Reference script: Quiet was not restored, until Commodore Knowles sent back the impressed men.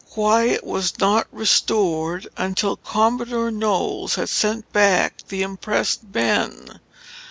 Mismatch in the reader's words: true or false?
true